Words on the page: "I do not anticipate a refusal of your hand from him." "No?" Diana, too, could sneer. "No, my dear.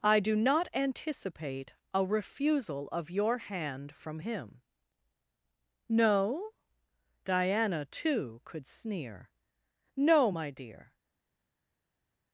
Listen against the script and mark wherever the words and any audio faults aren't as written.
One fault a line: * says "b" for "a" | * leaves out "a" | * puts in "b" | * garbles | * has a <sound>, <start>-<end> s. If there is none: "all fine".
all fine